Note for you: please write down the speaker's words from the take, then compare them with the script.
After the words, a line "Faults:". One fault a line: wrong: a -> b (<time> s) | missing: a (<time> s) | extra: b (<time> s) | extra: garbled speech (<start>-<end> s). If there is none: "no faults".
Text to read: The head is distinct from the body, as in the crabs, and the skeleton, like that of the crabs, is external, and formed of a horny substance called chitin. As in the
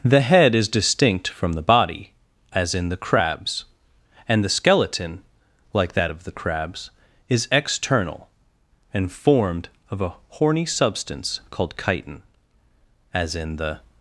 The head is distinct from the body, as in the crabs, and the skeleton, like that of the crabs, is external, and formed of a horny substance called chitin. As in the
Faults:
no faults